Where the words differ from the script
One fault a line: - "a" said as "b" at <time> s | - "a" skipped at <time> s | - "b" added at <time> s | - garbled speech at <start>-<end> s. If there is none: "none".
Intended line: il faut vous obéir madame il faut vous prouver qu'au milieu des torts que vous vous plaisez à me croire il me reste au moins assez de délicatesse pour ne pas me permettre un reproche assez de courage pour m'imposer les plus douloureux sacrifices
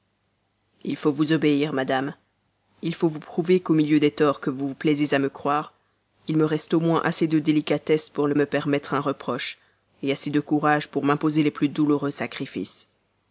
- "pas" skipped at 8.3 s